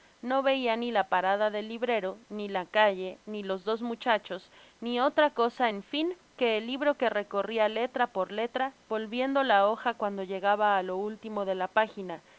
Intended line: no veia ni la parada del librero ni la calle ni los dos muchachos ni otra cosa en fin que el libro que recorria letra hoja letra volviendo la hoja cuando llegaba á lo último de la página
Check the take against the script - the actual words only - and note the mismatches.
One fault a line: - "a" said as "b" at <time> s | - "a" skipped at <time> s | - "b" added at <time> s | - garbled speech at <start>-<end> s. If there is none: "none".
- "hoja" said as "por" at 8.1 s